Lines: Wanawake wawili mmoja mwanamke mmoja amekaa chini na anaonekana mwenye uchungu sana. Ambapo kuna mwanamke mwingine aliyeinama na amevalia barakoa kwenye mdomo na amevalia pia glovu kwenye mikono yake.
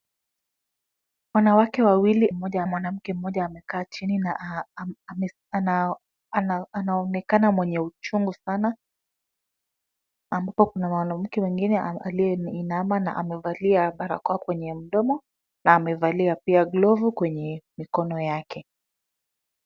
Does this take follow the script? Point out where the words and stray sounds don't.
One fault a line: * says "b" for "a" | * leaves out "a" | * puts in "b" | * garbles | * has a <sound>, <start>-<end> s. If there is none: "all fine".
all fine